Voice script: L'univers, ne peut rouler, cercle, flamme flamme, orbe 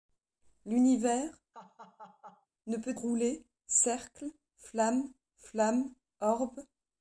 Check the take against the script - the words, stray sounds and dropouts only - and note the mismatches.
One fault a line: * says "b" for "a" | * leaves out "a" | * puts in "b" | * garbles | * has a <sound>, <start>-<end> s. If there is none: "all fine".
* has a laugh, 1.5-2.5 s